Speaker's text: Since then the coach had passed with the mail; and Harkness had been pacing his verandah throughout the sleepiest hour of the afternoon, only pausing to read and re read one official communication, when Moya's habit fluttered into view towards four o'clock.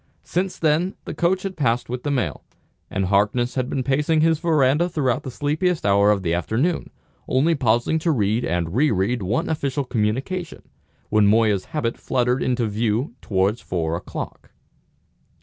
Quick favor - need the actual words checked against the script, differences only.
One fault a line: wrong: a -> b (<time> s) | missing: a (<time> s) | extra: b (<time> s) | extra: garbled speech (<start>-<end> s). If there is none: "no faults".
no faults